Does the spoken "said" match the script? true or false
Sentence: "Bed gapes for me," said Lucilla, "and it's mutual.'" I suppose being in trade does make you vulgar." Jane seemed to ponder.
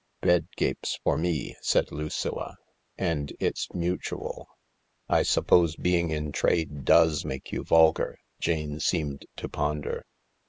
true